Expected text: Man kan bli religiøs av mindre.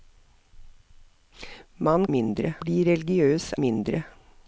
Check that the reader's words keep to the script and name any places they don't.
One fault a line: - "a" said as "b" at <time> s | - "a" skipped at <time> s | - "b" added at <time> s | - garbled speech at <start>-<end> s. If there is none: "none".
- "kan" said as "mindre" at 2.2 s
- "av" skipped at 3.5 s